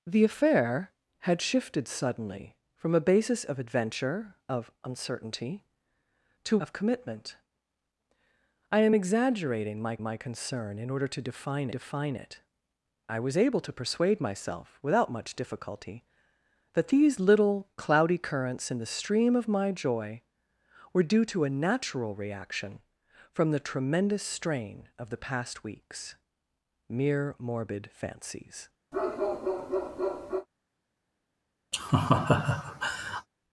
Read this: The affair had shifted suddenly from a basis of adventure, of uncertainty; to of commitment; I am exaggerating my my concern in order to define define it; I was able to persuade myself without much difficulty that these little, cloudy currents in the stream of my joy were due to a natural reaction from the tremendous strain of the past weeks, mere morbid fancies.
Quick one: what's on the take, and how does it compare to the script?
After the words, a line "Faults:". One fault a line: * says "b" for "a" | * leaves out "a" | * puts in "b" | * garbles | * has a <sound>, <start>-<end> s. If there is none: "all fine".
The affair had shifted suddenly from a basis of adventure, of uncertainty; to of commitment; I am exaggerating my my concern in order to define define it; I was able to persuade myself without much difficulty that these little, cloudy currents in the stream of my joy were due to a natural reaction from the tremendous strain of the past weeks, mere morbid fancies.
Faults:
* has a bark, 28.9-30.5 s
* has a laugh, 31.7-33.3 s